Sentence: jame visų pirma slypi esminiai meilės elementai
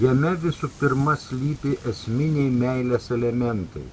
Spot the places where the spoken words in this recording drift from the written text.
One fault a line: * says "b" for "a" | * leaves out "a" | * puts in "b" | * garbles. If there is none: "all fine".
all fine